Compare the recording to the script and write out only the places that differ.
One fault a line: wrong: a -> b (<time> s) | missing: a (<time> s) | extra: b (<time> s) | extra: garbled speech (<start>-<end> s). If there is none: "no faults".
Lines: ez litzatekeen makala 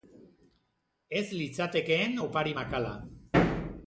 extra: opari (2.2 s)